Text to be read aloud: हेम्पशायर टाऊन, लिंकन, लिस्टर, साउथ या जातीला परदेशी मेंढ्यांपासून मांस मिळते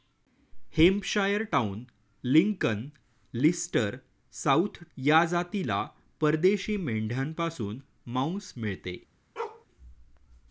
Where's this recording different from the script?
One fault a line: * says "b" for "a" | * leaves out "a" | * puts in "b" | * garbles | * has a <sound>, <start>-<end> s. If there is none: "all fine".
* has a bark, 9.4-9.7 s